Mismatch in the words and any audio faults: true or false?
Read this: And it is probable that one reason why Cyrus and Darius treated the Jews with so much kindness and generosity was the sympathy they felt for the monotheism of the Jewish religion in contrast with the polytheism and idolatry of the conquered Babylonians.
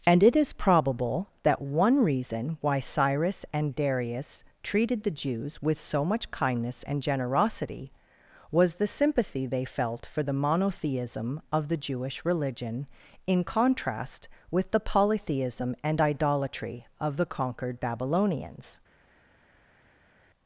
false